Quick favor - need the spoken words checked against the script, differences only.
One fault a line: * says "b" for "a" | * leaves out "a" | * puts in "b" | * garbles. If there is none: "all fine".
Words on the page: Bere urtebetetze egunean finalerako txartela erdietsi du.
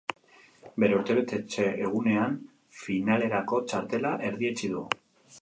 all fine